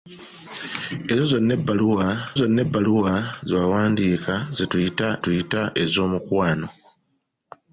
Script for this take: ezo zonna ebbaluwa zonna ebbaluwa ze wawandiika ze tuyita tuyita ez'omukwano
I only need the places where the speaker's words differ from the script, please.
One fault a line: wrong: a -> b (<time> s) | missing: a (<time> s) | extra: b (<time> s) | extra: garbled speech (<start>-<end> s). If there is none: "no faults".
no faults